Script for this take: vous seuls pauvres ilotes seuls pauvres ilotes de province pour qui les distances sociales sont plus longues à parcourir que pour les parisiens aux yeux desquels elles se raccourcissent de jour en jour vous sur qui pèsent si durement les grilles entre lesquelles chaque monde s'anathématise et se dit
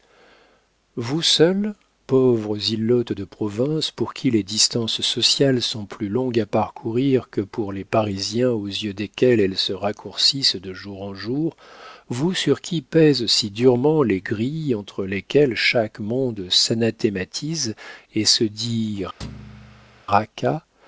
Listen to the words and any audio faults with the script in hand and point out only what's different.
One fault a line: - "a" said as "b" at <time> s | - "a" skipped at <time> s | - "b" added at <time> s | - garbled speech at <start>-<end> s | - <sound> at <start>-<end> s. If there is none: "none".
- "seuls pauvres ilotes" skipped at 3.1 s
- thud at 19.2-20.0 s